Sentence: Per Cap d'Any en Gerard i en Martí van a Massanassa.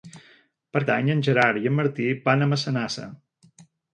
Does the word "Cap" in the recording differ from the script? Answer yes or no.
yes